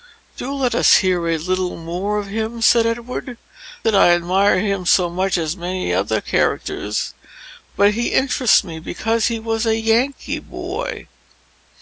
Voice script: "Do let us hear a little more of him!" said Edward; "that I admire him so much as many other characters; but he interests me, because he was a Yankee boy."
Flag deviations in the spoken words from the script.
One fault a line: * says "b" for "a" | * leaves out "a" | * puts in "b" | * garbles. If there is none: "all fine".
all fine